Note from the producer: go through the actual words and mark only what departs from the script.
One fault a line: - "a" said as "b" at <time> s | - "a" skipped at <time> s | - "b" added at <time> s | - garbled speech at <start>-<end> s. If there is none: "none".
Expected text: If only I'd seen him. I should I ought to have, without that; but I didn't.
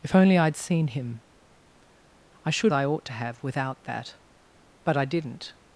none